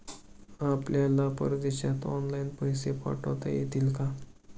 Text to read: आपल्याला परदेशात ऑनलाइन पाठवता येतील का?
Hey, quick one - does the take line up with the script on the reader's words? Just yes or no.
no